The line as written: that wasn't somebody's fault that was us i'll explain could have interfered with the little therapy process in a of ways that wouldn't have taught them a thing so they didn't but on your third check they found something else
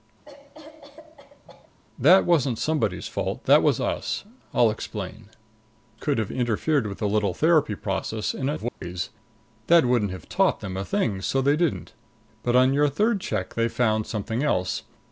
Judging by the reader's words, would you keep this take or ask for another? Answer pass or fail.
pass